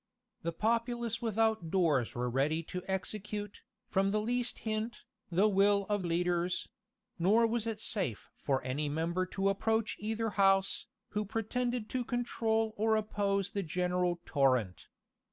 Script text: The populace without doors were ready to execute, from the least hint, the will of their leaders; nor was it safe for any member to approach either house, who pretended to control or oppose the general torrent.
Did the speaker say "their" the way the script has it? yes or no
no